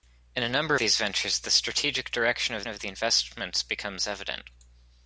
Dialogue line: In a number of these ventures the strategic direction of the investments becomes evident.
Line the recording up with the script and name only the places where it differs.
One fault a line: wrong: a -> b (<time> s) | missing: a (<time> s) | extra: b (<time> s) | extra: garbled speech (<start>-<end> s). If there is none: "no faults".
missing: of (0.8 s)
extra: of (2.7 s)